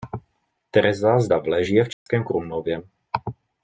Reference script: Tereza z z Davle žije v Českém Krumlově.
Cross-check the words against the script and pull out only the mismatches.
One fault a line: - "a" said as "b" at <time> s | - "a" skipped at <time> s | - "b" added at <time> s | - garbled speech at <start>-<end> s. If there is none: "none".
- "z" skipped at 1.3 s